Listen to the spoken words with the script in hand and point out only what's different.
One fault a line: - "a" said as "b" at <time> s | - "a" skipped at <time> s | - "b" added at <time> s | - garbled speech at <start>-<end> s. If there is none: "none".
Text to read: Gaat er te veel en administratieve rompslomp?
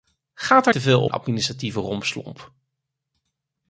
none